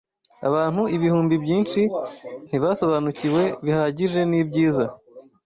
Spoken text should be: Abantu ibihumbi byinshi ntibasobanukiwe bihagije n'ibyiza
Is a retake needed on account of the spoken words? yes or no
no